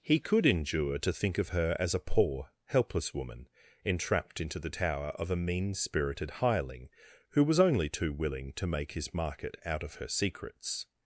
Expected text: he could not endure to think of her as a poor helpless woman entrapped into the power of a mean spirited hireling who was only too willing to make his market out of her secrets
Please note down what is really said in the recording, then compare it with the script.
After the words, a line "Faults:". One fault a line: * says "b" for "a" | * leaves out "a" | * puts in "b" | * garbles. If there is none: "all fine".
he could endure to think of her as a poor helpless woman entrapped into the tower of a mean spirited hireling who was only too willing to make his market out of her secrets
Faults:
* leaves out "not"
* says "tower" for "power"